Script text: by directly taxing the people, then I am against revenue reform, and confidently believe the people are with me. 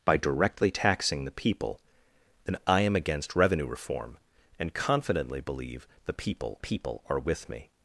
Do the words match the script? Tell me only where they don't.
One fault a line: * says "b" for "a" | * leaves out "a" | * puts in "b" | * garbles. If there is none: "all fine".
* puts in "people"